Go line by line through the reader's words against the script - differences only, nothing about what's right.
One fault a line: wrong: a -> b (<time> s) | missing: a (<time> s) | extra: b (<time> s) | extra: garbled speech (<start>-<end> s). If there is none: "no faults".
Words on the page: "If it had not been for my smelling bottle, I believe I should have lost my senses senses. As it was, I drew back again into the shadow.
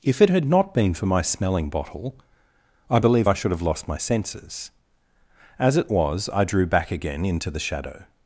missing: senses (4.7 s)